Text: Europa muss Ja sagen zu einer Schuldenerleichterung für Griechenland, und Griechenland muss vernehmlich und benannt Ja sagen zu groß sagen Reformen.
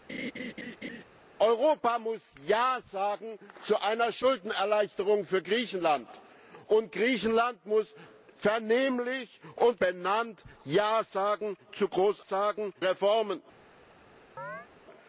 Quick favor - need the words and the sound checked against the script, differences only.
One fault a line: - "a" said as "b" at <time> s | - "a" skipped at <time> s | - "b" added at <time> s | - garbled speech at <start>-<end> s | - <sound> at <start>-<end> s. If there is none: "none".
- laugh at 0.1-1.0 s
- chirp at 14.4-14.7 s